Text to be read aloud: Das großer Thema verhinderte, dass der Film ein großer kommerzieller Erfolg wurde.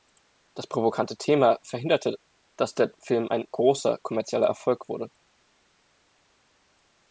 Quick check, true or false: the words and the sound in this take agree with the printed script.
false